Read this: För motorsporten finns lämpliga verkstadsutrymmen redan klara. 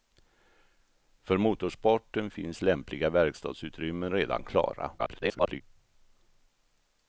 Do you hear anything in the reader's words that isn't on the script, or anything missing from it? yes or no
yes